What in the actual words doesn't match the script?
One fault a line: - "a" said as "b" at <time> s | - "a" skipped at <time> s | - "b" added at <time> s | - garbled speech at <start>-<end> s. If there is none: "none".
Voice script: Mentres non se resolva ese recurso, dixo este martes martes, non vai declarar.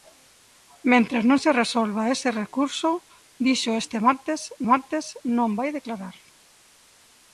none